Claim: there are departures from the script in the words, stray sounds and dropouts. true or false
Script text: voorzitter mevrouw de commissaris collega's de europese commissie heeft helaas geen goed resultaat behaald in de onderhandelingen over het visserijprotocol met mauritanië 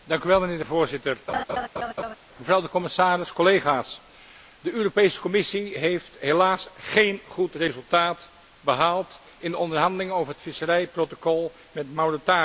true